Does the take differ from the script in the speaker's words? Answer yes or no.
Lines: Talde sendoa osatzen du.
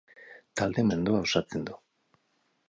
no